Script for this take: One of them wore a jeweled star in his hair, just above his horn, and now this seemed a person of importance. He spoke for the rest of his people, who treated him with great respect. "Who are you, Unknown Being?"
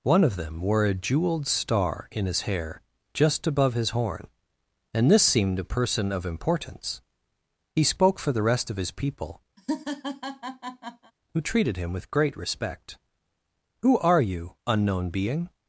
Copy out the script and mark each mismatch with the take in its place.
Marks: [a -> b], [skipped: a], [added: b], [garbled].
One of them wore a jeweled star in his hair, just above his horn, and [skipped: now] this seemed a person of importance. He spoke for the rest of his people, who treated him with great respect. "Who are you, Unknown Being?"